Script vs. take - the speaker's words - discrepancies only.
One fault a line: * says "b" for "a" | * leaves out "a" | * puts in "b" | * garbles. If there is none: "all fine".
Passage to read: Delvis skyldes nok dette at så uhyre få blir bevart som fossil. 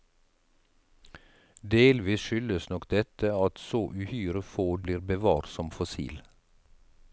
all fine